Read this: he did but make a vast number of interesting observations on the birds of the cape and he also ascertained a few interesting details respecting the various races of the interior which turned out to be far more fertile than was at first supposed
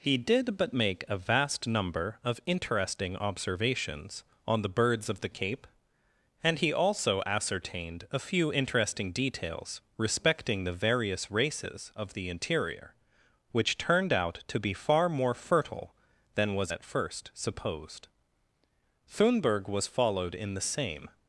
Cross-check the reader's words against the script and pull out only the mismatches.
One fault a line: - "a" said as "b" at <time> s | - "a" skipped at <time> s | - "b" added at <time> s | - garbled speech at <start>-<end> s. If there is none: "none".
- "thunberg was followed in the same" added at 19.1 s